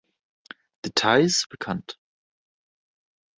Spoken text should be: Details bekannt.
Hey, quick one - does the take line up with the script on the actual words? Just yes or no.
yes